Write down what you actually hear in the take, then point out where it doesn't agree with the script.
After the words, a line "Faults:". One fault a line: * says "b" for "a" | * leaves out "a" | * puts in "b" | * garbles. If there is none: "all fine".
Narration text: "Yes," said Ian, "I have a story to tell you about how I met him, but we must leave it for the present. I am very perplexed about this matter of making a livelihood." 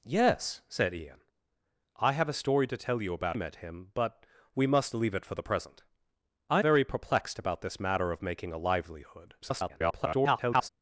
"Yes," said Ian, "I have a story to tell you about met him, but we must leave it for the present. I very perplexed about this matter of making a livelihood." [garbled]
Faults:
* leaves out "how I"
* leaves out "am"
* garbles